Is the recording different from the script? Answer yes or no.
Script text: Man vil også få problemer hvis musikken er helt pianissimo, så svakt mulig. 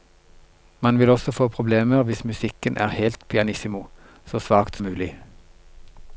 no